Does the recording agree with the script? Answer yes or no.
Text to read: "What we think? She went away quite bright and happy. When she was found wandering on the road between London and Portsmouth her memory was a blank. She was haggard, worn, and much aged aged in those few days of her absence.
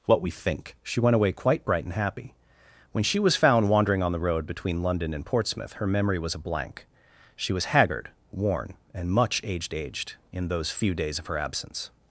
yes